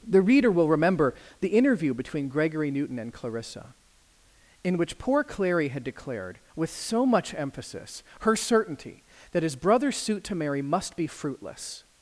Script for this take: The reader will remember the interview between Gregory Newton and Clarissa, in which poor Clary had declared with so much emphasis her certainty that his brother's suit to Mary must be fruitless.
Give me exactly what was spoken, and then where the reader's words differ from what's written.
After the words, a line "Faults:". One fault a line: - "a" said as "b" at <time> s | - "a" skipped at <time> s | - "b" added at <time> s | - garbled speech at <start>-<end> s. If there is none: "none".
The reader will remember the interview between Gregory Newton and Clarissa, in which poor Clary had declared with so much emphasis her certainty that his brother's suit to Mary must be fruitless.
Faults:
none